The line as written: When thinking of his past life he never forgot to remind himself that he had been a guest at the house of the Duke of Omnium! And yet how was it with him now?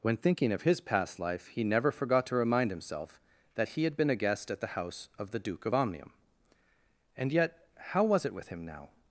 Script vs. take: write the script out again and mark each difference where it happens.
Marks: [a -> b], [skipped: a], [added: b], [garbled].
When thinking of his past life he never forgot to remind himself that he had been a guest at the house of the Duke of Omnium! And yet how was it with him now?